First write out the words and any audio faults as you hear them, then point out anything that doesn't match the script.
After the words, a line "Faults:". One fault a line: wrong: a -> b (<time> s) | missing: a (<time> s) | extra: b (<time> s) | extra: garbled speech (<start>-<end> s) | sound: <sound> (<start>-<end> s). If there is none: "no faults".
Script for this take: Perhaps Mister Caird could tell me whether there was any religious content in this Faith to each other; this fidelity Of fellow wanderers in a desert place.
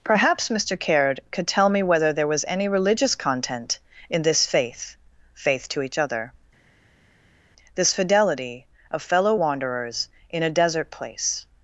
Perhaps Mister Caird could tell me whether there was any religious content in this Faith Faith to each other; this fidelity Of fellow wanderers in a desert place.
Faults:
extra: Faith (5.3 s)